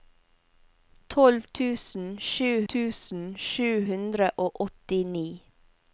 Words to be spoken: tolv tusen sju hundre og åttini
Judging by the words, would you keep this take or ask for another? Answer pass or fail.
fail